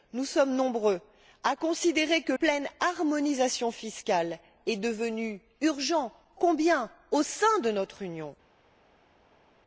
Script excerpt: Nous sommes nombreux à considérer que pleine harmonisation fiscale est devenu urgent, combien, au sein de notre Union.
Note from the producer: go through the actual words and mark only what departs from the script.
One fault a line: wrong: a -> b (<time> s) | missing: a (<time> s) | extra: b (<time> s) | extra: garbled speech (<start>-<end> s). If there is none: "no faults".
no faults